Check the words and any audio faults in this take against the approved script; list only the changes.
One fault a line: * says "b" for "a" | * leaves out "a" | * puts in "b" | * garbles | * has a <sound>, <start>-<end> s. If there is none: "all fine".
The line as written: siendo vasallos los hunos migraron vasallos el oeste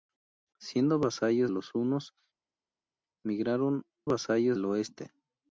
all fine